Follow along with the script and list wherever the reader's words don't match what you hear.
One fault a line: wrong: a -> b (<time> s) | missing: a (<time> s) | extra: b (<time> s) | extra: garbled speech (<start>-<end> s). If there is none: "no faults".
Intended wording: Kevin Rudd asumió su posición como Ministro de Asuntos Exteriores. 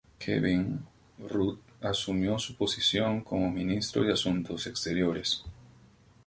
no faults